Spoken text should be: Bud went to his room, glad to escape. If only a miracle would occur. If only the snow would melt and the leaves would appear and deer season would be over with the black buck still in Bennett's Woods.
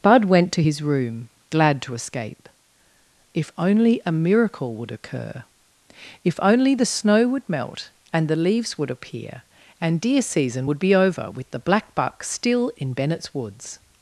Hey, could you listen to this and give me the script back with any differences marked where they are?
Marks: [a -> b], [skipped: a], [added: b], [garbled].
Bud went to his room, glad to escape. If only a miracle would occur. If only the snow would melt and the leaves would appear and deer season would be over with the black buck still in Bennett's Woods.